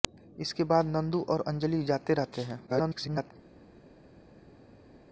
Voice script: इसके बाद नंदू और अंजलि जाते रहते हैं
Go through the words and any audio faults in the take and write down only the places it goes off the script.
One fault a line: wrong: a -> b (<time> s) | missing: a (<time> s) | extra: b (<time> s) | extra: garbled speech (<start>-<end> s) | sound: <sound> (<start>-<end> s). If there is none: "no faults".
extra: garbled speech (2.7-3.3 s)